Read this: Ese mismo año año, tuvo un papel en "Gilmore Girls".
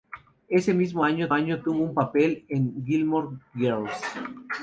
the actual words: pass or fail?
pass